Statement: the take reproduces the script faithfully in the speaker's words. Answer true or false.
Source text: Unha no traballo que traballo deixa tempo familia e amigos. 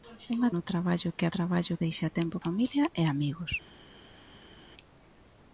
true